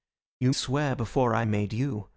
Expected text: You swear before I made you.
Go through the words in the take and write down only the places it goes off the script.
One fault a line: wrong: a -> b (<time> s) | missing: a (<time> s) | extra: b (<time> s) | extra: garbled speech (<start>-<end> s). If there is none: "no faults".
no faults